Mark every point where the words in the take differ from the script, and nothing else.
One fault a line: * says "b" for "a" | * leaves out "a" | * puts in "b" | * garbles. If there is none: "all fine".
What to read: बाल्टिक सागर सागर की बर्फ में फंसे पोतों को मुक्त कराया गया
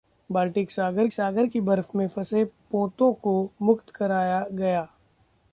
all fine